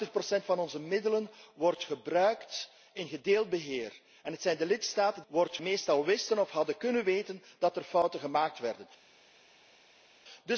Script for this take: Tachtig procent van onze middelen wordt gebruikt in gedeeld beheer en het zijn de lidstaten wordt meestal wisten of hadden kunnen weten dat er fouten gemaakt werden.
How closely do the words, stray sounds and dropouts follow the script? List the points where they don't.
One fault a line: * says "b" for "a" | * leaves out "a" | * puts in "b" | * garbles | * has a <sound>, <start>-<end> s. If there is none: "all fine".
all fine